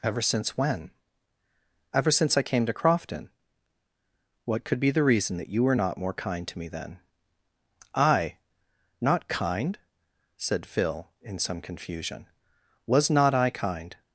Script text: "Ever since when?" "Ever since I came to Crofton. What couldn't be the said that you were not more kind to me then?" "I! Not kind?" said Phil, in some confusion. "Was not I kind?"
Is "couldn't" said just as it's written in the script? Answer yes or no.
no